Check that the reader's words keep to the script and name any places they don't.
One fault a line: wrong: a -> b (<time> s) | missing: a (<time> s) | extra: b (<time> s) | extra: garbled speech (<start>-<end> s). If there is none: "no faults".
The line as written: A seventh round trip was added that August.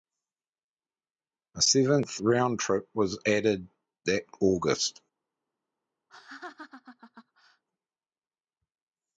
no faults